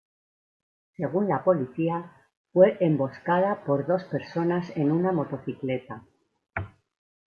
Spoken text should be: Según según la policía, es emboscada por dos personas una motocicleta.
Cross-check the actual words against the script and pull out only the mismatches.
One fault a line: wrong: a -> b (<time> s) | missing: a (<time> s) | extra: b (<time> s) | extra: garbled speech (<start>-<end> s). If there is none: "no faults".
missing: según (1.3 s)
wrong: es -> fue (2.5 s)
extra: en (4.8 s)